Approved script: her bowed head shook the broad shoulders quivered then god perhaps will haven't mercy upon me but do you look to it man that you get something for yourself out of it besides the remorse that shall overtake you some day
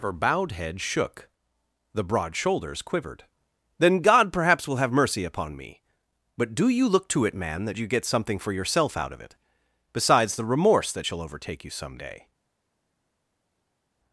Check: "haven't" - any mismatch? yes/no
yes